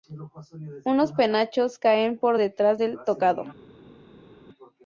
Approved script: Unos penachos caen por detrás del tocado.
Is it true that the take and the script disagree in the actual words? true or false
false